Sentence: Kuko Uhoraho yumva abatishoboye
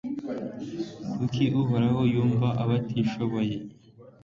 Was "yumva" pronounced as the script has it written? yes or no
yes